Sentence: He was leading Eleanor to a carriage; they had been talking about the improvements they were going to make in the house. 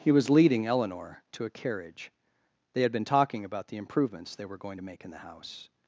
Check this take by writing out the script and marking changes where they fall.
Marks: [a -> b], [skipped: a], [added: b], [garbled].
He was leading Eleanor to a carriage; they had been talking about the improvements they were going to make in the house.